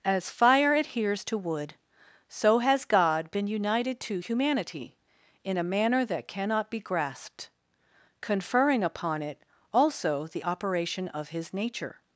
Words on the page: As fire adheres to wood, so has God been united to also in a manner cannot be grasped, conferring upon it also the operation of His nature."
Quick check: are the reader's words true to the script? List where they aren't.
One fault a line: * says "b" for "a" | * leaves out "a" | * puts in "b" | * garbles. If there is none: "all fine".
* says "humanity" for "also"
* puts in "that"